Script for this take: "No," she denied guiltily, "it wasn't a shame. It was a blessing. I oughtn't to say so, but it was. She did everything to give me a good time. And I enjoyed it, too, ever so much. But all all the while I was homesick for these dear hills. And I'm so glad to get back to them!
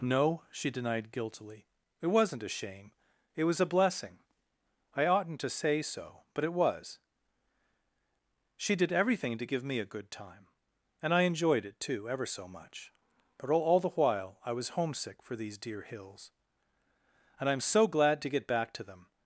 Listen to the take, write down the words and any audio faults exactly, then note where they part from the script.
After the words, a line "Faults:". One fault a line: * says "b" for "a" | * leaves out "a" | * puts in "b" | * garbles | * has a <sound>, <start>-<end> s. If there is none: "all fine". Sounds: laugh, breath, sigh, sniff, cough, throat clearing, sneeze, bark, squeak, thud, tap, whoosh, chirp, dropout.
"No," she denied guiltily, "it wasn't a shame. It was a blessing. I oughtn't to say so, but it was. She did everything to give me a good time. And I enjoyed it, too, ever so much. But all all the while I was homesick for these dear hills. And I'm so glad to get back to them!
Faults:
all fine